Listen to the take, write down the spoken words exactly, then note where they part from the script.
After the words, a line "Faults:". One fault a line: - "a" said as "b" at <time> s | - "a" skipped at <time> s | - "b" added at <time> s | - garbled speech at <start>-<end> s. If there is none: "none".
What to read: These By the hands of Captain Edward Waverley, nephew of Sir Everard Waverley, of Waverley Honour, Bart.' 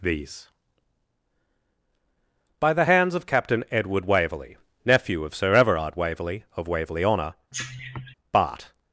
These By the hands of Captain Edward Waverley, nephew of Sir Everard Waverley, of Waverley Honour, Bart.'
Faults:
none